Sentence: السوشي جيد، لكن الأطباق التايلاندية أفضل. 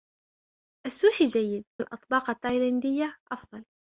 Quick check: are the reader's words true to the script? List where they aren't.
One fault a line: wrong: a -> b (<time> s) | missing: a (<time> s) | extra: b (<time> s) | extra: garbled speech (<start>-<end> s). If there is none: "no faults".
missing: لكن (1.6 s)